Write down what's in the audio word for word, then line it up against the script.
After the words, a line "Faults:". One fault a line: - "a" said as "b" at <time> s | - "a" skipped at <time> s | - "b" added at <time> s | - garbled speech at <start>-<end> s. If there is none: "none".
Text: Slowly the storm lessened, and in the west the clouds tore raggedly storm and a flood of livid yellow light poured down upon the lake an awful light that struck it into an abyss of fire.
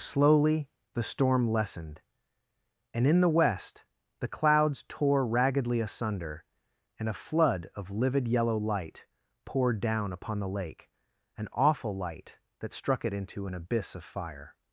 Slowly the storm lessened, and in the west the clouds tore raggedly asunder and a flood of livid yellow light poured down upon the lake an awful light that struck it into an abyss of fire.
Faults:
- "storm" said as "asunder" at 5.8 s